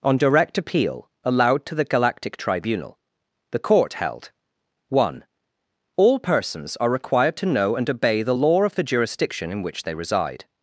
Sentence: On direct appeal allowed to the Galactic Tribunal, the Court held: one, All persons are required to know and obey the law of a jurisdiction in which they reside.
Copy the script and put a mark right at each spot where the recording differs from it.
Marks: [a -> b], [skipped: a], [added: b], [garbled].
On direct appeal allowed to the Galactic Tribunal, the Court held: one, All persons are required to know and obey the law of [a -> the] jurisdiction in which they reside.